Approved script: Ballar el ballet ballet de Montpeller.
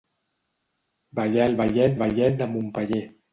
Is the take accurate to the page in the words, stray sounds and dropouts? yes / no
yes